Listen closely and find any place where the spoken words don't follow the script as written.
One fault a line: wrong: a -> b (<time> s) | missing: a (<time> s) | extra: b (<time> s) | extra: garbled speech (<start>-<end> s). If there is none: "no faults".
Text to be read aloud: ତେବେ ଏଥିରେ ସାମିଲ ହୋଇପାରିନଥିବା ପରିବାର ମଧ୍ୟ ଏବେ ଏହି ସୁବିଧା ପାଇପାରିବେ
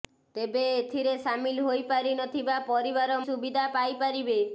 missing: ମଧ୍ୟ ଏବେ ଏହି (3.2 s)